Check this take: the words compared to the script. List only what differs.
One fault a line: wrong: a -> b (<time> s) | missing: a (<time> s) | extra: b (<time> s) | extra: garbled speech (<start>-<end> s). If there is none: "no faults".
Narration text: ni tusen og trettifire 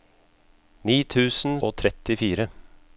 no faults